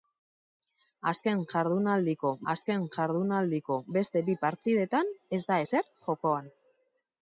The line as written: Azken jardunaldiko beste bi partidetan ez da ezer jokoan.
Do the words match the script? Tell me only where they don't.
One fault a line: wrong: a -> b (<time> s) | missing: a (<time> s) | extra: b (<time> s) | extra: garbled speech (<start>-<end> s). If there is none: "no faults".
extra: azken jardunaldiko (2.5 s)